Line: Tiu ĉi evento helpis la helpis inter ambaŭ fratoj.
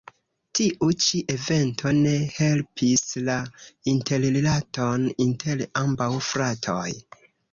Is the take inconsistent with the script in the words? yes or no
yes